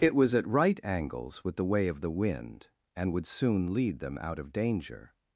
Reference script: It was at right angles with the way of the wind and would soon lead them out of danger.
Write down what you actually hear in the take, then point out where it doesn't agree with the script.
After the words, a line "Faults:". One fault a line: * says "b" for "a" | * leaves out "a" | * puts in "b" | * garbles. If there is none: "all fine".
It was at right angles with the way of the wind and would soon lead them out of danger.
Faults:
all fine